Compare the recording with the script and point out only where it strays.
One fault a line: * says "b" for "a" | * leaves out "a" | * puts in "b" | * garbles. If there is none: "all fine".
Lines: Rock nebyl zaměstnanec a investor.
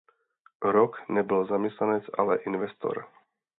* says "ale" for "a"